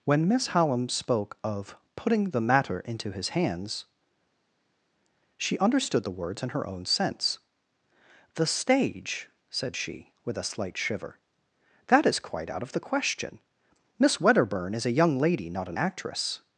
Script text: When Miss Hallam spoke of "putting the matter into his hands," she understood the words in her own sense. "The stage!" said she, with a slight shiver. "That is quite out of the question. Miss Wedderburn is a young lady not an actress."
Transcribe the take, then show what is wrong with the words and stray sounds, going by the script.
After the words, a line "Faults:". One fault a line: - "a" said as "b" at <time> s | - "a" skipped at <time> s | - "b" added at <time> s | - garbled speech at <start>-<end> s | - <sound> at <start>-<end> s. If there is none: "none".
When Miss Hallam spoke of "putting the matter into his hands," she understood the words in her own sense. "The stage!" said she, with a slight shiver. "That is quite out of the question. Miss Wedderburn is a young lady not an actress."
Faults:
none